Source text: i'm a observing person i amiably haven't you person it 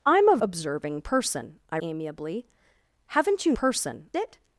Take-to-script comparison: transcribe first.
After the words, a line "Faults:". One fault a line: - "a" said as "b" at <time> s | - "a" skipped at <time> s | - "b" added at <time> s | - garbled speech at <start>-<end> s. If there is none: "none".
i'm a observing person i amiably haven't you person it
Faults:
none